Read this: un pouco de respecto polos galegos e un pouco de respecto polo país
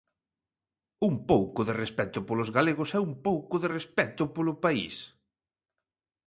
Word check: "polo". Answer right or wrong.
right